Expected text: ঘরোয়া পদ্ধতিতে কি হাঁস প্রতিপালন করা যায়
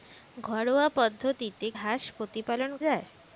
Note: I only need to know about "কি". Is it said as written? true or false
false